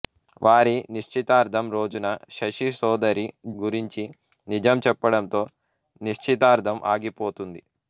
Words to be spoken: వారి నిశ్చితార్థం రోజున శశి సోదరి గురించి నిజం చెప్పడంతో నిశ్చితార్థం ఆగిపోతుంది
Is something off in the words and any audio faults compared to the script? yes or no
no